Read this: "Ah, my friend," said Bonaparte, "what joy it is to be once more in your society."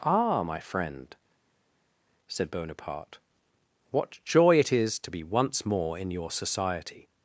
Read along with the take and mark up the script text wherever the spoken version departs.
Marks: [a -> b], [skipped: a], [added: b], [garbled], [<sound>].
"Ah, my friend," said Bonaparte, "what joy it is to be once more in your society."